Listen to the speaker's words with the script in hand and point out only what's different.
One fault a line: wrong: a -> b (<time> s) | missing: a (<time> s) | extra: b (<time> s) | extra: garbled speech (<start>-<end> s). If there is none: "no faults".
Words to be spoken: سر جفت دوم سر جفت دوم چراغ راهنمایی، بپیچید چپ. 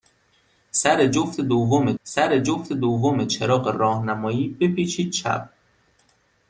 no faults